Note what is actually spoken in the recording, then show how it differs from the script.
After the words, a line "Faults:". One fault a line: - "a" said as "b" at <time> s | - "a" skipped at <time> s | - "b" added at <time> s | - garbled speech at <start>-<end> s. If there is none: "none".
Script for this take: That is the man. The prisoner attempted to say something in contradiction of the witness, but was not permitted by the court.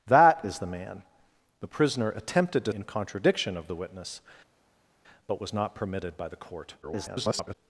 That is the man. The prisoner attempted to in contradiction of the witness, but was not permitted by the court. [garbled]
Faults:
- "say something" skipped at 2.7 s
- garbled speech at 6.8-7.6 s